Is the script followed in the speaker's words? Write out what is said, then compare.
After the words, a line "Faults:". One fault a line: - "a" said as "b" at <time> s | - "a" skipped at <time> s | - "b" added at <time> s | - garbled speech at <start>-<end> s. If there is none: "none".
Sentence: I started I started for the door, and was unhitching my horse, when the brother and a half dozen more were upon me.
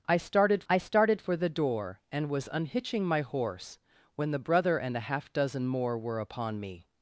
I started I started for the door, and was unhitching my horse, when the brother and a half dozen more were upon me.
Faults:
none